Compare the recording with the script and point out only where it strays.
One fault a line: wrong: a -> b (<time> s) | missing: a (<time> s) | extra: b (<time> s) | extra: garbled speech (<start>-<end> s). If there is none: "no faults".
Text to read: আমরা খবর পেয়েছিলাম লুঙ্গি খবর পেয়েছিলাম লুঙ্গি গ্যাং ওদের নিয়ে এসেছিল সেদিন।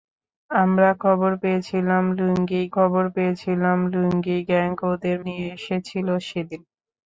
no faults